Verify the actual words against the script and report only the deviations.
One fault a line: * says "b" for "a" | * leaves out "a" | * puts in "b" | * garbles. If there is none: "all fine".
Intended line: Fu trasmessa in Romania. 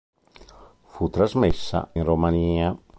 all fine